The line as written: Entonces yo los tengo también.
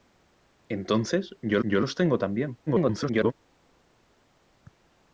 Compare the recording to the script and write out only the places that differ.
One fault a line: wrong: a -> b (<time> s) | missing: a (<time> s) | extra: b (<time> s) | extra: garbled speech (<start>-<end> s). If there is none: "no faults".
extra: yo (1.6 s)
extra: garbled speech (2.7-3.3 s)